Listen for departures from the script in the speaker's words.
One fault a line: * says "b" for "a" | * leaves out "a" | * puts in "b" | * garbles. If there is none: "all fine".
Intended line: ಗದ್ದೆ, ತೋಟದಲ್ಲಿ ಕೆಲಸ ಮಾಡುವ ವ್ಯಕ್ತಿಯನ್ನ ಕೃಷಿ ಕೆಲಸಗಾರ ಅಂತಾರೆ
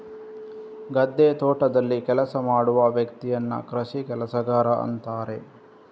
all fine